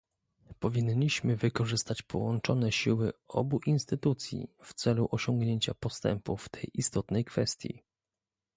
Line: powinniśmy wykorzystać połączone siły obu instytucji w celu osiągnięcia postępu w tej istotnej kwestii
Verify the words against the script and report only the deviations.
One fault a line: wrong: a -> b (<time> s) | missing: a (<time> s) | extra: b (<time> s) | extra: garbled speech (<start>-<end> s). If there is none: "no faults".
no faults